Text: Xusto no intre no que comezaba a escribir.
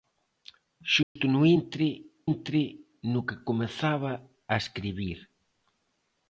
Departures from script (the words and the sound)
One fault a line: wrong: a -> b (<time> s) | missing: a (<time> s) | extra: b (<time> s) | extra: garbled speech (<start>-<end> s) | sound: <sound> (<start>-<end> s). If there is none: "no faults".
sound: dropout (1.0-1.2 s)
extra: intre (2.3 s)